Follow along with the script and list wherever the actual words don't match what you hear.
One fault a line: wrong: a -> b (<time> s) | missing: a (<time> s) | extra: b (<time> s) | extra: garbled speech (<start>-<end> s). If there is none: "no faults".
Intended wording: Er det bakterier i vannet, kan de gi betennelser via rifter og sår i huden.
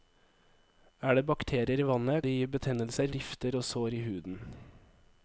missing: kan (2.2 s)
missing: via (3.1 s)